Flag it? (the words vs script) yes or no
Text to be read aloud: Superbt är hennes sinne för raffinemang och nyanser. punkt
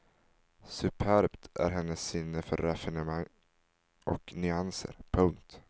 no